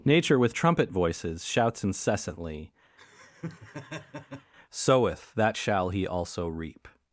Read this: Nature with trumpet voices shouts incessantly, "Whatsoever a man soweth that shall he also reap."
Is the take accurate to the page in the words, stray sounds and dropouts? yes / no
no